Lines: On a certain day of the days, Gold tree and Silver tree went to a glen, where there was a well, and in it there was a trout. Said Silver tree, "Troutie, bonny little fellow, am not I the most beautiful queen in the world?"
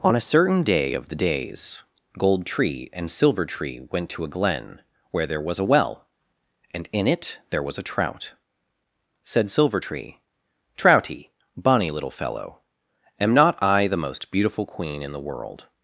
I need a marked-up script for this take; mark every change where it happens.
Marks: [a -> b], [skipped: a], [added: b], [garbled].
On a certain day of the days, Gold tree and Silver tree went to a glen, where there was a well, and in it there was a trout. Said Silver tree, "Troutie, bonny little fellow, am not I the most beautiful queen in the world?"